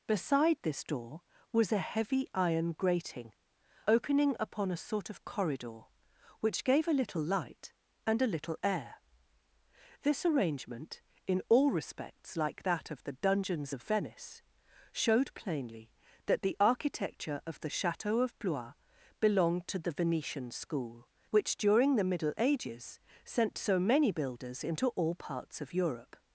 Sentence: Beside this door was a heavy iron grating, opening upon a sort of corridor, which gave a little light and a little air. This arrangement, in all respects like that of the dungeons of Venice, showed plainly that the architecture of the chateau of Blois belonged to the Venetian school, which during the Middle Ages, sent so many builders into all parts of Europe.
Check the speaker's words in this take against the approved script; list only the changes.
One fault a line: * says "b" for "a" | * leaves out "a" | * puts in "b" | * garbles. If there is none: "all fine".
all fine